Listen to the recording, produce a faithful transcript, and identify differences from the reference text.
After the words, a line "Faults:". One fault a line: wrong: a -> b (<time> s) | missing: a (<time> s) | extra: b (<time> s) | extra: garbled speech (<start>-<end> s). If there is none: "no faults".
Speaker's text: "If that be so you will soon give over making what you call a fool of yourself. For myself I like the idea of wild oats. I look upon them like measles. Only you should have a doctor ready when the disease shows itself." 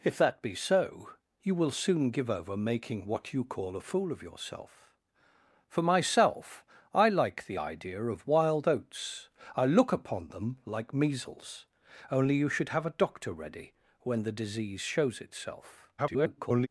"If that be so you will soon give over making what you call a fool of yourself. For myself I like the idea of wild oats. I look upon them like measles. Only you should have a doctor ready when the disease shows itself." [garbled]
Faults:
extra: garbled speech (16.0-16.7 s)